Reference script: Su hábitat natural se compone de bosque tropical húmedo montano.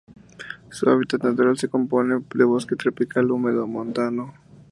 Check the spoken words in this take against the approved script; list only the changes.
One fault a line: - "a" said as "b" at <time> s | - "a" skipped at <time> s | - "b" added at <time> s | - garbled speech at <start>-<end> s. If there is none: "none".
none